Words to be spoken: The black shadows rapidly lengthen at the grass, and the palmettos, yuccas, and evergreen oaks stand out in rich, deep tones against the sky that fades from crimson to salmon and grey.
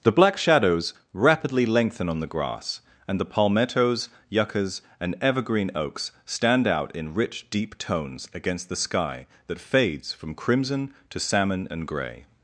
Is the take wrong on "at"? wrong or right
wrong